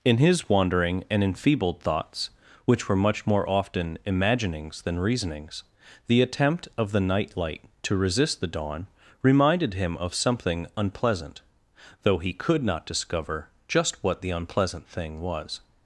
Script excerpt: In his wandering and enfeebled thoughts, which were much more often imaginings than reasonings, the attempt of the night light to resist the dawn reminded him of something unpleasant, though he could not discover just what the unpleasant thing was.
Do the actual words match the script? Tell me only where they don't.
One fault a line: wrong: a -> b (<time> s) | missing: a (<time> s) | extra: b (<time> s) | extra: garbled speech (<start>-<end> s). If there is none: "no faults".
no faults